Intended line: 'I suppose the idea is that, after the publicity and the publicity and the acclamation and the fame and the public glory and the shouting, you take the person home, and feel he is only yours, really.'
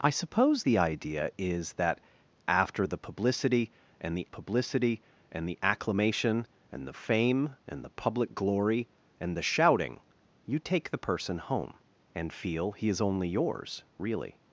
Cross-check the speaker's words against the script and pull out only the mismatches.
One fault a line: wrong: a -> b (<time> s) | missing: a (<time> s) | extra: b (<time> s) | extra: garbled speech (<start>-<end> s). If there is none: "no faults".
no faults